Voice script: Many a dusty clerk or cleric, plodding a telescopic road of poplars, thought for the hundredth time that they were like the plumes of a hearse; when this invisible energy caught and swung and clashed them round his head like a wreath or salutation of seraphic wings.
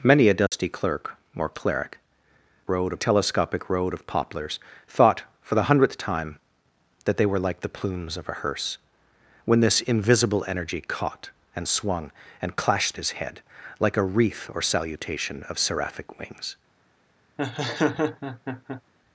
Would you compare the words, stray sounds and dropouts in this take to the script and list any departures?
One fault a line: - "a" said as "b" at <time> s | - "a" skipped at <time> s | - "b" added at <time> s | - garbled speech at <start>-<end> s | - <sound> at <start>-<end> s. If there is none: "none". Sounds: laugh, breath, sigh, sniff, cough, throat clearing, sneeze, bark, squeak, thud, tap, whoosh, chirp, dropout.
- dropout at 0.5-0.5 s
- "plodding" said as "road" at 2.7 s
- "them round" skipped at 12.9 s
- laugh at 17.4-18.8 s